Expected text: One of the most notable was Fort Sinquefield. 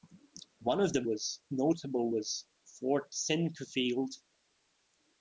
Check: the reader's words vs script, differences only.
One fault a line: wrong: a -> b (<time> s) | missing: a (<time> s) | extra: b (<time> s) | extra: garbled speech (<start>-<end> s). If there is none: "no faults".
wrong: most -> was (1.0 s)